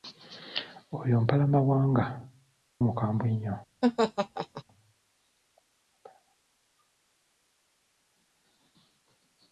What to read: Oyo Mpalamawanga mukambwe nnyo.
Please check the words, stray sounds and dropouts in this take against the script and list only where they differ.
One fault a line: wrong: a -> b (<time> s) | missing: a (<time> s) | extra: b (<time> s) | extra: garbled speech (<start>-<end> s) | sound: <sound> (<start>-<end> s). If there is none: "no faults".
sound: laugh (3.8-4.6 s)